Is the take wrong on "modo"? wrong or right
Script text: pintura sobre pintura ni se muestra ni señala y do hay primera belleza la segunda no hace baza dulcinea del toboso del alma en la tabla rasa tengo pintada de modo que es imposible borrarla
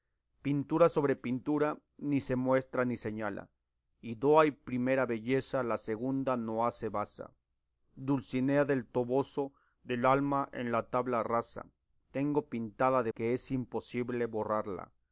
wrong